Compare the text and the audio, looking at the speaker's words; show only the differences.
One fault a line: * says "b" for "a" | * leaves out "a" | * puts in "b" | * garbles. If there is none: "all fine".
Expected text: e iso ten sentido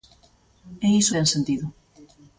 all fine